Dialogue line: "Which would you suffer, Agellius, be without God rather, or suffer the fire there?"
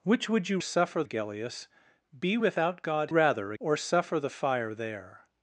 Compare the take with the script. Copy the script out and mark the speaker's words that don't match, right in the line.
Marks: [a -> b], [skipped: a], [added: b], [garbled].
"Which would you suffer, Agellius, be without God rather, or suffer the fire there?"